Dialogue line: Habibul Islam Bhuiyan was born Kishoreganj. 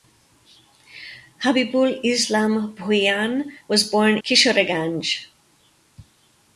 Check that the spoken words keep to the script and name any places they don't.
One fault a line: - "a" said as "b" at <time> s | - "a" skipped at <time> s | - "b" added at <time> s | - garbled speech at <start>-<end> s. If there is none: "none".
none